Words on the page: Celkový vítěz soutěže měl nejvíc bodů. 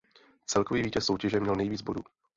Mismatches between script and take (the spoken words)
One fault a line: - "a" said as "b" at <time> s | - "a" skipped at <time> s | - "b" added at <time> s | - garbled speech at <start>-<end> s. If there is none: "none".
none